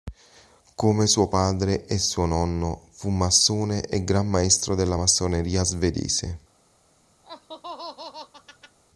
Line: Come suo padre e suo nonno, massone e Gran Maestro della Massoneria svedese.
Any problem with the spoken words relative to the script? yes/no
yes